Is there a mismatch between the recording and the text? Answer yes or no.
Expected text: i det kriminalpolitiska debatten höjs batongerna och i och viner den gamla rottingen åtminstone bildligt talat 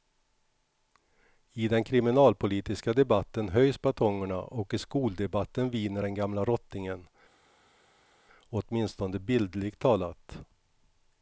yes